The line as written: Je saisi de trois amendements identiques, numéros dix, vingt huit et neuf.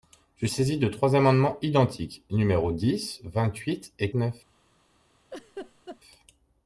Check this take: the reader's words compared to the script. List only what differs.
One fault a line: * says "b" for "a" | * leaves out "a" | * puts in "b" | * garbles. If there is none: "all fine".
all fine